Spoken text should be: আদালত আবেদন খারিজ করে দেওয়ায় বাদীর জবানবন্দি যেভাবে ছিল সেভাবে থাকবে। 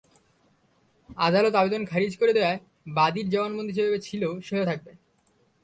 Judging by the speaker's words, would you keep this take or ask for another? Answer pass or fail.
pass